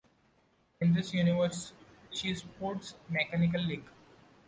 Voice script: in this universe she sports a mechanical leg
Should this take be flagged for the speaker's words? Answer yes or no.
yes